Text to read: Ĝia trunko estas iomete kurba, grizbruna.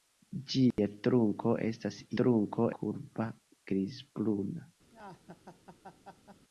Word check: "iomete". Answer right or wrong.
wrong